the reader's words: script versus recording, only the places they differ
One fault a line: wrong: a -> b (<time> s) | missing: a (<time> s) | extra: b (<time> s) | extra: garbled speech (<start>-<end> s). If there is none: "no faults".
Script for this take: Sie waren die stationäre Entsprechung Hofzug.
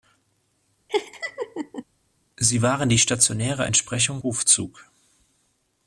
no faults